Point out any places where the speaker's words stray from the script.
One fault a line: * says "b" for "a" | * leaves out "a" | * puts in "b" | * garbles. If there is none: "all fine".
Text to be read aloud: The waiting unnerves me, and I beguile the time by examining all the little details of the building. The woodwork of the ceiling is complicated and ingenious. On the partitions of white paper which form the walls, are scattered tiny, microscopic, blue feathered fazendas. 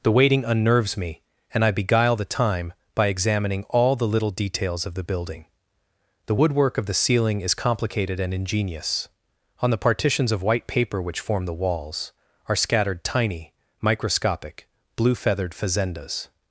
all fine